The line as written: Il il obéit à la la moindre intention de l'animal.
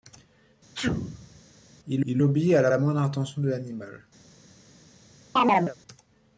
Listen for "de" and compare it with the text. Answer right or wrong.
right